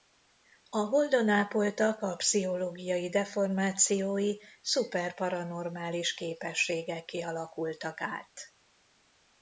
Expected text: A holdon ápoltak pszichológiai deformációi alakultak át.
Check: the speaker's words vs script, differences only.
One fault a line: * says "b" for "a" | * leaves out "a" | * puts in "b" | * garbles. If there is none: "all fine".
* puts in "a"
* puts in "szuper paranormális képességekké"